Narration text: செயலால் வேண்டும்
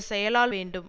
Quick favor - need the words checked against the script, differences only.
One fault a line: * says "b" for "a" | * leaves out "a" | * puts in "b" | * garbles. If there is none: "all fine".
all fine